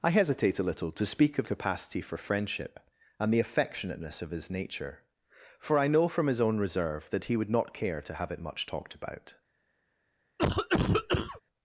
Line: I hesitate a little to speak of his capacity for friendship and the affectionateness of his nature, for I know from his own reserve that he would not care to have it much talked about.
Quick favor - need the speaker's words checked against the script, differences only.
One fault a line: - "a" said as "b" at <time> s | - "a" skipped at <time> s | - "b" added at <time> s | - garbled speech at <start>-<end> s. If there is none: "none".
- "his" skipped at 1.4 s